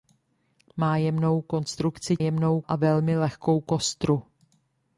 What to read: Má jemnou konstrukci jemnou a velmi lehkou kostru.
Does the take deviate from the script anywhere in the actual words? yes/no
no